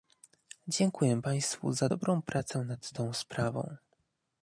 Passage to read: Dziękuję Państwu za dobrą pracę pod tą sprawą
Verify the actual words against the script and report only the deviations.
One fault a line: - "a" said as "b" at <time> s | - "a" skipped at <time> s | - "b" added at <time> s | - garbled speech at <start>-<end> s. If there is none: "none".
- "pod" said as "nad" at 2.6 s